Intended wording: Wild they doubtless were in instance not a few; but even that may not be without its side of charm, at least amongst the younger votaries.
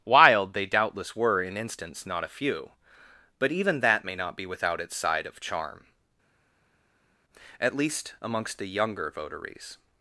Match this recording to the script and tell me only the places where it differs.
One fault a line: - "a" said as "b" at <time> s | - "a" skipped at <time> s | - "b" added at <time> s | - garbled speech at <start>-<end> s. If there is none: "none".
none